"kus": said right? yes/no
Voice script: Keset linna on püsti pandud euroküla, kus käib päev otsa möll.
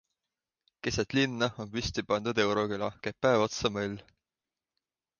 no